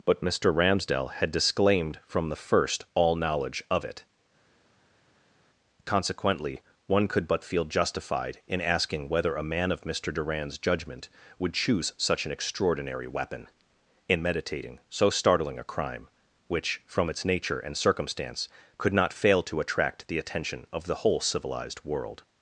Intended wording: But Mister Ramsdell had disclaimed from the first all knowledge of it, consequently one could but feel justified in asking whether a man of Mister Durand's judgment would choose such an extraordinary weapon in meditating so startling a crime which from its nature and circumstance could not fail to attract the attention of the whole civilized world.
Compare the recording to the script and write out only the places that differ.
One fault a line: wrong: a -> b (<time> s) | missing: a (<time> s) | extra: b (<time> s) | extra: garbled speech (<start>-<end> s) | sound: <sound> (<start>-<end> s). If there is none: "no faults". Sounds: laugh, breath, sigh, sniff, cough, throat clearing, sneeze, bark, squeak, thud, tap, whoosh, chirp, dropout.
no faults